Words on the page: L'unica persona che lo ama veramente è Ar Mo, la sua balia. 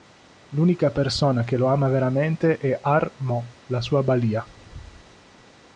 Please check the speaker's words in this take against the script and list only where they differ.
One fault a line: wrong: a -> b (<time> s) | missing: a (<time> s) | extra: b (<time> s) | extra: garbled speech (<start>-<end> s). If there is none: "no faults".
no faults